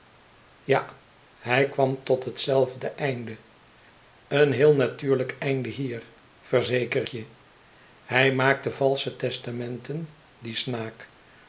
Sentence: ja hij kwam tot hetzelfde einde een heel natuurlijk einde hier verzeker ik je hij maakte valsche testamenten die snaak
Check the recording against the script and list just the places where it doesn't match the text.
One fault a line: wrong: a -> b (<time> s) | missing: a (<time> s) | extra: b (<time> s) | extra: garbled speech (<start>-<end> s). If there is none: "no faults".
missing: ik (7.1 s)